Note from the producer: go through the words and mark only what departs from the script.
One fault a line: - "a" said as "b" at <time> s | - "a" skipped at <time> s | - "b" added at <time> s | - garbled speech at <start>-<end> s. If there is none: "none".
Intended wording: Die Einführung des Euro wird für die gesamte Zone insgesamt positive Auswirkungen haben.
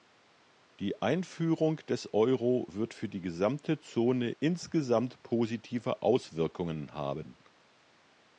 none